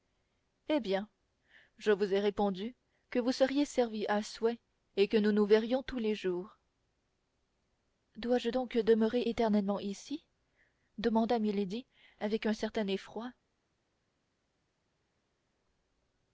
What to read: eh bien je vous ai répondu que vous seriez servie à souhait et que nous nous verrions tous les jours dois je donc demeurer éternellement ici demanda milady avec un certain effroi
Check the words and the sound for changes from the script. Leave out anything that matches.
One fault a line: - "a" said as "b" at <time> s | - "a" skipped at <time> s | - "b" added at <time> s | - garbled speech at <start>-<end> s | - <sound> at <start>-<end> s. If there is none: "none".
none